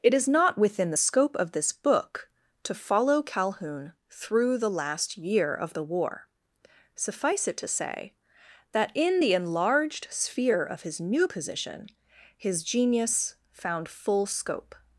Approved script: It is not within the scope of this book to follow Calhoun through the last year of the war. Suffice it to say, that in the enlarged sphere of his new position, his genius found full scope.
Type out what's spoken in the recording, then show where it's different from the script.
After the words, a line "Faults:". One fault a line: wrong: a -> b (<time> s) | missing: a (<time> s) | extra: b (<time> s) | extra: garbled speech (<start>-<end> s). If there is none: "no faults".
It is not within the scope of this book to follow Calhoun through the last year of the war. Suffice it to say, that in the enlarged sphere of his new position, his genius found full scope.
Faults:
no faults